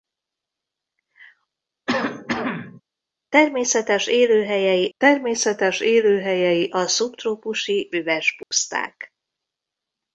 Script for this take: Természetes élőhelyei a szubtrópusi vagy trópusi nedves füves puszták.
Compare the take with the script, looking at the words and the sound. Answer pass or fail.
fail